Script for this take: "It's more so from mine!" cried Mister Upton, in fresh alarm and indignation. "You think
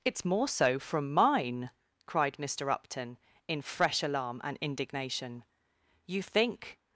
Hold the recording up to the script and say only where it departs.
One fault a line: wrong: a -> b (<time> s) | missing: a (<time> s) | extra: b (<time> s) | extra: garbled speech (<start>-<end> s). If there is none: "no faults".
no faults